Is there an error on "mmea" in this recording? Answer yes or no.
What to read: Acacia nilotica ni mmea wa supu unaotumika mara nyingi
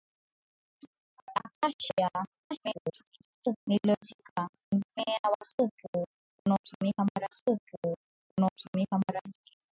no